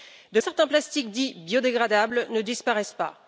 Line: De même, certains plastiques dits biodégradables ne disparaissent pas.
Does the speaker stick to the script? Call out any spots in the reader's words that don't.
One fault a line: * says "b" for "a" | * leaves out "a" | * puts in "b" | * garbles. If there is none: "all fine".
* leaves out "même"